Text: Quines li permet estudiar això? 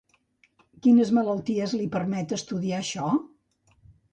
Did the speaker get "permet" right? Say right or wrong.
right